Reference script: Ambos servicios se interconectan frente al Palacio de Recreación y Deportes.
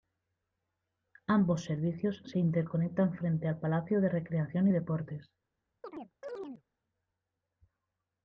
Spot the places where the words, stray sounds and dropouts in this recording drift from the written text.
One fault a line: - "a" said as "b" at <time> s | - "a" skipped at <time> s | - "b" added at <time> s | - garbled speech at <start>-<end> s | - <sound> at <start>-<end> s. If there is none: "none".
- chirp at 5.8-6.6 s